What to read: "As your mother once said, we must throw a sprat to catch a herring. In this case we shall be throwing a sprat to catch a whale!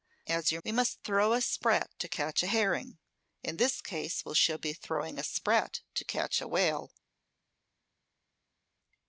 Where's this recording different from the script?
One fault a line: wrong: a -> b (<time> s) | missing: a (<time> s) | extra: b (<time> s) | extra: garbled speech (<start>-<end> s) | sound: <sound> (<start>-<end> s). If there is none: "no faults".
missing: mother once said (0.6 s)